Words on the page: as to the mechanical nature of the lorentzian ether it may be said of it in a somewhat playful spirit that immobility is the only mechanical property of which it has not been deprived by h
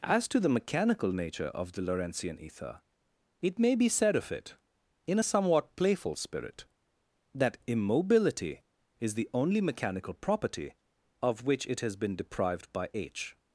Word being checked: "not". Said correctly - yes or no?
no